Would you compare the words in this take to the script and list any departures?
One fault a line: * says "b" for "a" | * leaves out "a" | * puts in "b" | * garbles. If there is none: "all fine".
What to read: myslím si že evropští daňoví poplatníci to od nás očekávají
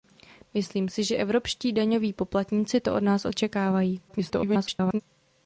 * garbles